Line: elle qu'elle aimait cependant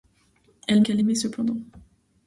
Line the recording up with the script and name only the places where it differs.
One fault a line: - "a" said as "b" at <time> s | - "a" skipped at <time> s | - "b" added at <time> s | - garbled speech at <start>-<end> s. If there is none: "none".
none